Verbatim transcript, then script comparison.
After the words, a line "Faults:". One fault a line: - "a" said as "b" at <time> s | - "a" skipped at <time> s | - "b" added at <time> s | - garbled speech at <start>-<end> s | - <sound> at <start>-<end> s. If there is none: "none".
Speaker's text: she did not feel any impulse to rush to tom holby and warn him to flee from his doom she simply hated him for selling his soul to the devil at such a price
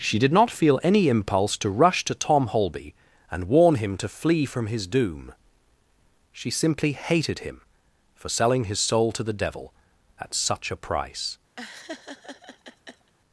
she did not feel any impulse to rush to tom holby and warn him to flee from his doom she simply hated him for selling his soul to the devil at such a price
Faults:
- laugh at 11.6-13.1 s